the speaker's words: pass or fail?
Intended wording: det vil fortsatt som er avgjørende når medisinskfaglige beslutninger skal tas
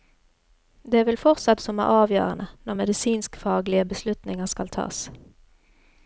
pass